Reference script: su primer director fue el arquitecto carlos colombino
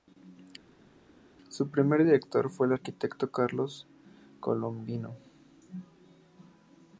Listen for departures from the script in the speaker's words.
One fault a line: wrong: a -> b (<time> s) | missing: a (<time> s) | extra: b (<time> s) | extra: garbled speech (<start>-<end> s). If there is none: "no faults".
no faults